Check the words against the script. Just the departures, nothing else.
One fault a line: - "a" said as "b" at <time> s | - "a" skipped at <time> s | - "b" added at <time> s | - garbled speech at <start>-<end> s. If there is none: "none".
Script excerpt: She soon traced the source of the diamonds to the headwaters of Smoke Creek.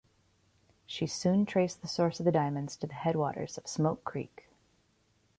none